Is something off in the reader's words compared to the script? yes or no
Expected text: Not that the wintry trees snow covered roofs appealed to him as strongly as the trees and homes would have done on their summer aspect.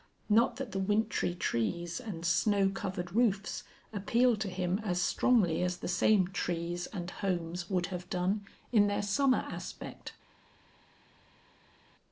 yes